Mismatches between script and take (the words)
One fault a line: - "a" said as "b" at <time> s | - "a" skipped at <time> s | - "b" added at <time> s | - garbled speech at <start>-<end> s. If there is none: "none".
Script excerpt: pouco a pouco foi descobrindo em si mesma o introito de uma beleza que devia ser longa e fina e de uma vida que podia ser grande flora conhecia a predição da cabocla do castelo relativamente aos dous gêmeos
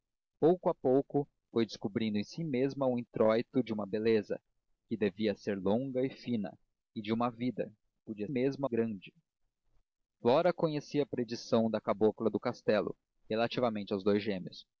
- "ser" said as "mesma" at 8.3 s